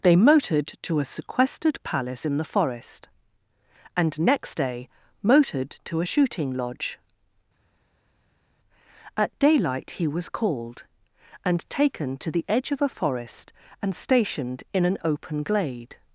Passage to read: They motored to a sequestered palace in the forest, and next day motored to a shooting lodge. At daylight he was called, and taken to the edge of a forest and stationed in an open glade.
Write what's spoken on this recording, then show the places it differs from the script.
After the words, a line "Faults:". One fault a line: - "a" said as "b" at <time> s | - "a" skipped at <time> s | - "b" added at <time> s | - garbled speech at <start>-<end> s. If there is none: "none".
They motored to a sequestered palace in the forest, and next day motored to a shooting lodge. At daylight he was called, and taken to the edge of a forest and stationed in an open glade.
Faults:
none